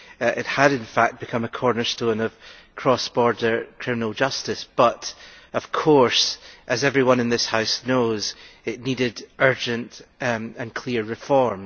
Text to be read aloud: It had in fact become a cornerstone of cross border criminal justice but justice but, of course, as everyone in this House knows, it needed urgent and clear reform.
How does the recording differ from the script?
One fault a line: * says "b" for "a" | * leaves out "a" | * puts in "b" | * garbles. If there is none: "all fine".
* leaves out "justice but"